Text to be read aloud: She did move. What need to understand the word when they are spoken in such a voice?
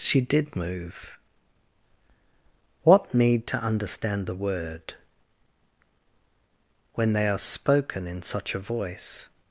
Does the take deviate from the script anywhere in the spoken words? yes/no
no